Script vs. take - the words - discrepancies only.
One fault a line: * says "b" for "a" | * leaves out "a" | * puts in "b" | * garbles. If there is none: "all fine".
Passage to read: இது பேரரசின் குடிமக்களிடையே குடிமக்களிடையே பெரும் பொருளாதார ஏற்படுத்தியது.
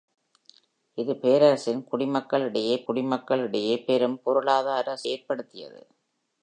all fine